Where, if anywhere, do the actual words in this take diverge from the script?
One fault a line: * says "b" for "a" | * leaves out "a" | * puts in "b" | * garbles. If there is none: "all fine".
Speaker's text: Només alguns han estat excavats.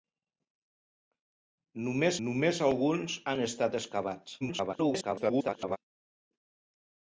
* puts in "només"
* garbles